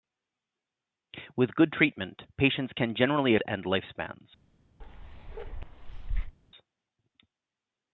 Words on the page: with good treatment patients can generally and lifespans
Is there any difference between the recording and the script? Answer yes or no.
no